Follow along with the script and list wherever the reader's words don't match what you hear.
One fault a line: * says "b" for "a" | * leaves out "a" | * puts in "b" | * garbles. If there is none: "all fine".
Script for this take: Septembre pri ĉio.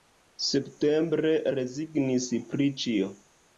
* puts in "rezignis"